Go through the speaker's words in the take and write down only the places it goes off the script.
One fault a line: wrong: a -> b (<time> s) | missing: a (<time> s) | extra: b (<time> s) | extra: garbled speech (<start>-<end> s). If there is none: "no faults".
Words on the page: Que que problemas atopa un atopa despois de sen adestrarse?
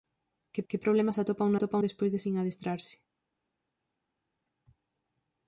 no faults